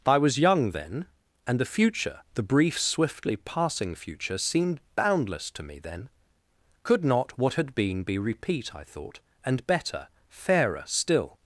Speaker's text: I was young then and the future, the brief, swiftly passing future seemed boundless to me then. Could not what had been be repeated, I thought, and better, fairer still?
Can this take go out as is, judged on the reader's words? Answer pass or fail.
fail